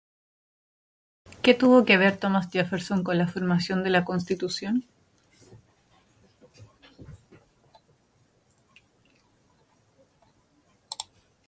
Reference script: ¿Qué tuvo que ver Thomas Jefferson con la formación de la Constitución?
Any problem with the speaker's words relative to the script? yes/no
no